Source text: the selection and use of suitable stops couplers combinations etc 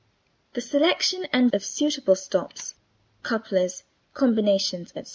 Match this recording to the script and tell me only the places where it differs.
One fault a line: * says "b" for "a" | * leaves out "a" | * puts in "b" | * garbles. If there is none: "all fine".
* leaves out "use"